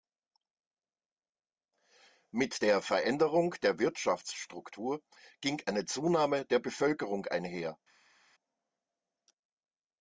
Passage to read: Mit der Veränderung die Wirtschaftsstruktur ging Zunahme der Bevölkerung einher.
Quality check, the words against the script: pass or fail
fail